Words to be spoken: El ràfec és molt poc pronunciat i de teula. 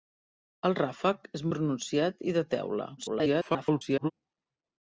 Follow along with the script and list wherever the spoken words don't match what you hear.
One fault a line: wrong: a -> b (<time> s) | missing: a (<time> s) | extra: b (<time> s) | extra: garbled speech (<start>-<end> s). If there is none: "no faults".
missing: molt poc (1.4 s)
extra: garbled speech (3.0-4.1 s)